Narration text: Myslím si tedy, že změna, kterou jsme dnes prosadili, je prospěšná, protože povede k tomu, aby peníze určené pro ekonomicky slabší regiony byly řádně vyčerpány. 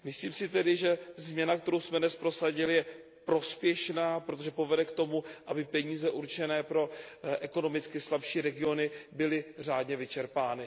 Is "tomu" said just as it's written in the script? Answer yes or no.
yes